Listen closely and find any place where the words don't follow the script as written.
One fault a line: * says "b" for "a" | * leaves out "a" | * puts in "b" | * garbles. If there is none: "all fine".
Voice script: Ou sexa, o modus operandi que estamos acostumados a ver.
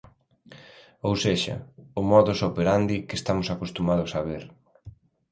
all fine